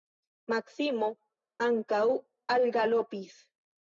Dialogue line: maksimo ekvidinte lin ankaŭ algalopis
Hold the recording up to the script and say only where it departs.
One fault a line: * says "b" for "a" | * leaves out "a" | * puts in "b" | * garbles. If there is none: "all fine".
* leaves out "ekvidinte lin"